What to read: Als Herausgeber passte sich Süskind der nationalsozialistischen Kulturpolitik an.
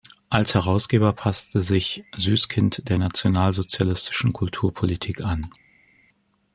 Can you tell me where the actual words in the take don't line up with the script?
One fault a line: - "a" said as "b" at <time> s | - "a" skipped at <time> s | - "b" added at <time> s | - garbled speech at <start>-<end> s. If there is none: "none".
none